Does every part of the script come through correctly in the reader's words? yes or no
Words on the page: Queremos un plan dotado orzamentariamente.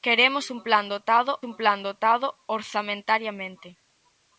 no